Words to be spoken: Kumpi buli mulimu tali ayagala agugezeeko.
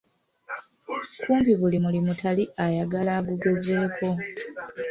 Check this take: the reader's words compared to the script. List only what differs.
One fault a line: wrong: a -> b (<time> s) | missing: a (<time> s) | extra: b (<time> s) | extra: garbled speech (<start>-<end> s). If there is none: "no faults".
no faults